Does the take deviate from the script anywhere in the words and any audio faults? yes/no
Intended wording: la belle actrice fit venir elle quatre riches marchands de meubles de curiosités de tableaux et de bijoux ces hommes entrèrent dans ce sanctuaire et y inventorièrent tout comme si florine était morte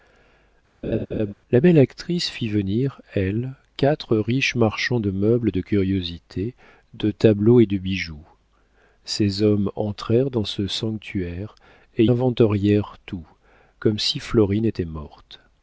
yes